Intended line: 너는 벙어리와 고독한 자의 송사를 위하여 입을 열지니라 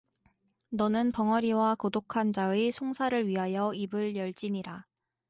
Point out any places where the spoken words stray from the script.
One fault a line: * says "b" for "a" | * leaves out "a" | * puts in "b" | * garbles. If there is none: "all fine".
all fine